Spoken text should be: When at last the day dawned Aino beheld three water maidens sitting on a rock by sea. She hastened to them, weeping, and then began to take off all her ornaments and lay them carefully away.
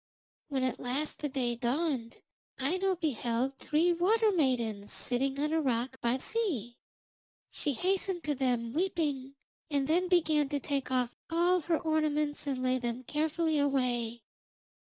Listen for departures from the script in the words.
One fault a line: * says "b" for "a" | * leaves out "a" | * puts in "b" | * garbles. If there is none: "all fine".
all fine